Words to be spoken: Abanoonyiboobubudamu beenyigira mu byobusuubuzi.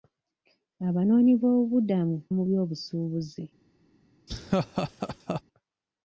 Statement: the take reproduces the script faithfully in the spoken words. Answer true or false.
false